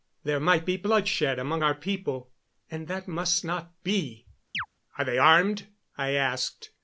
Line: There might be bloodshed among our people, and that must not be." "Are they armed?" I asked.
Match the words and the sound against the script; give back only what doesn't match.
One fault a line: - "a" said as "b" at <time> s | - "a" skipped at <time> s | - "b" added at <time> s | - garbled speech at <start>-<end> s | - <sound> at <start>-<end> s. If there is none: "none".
- chirp at 4.5-4.7 s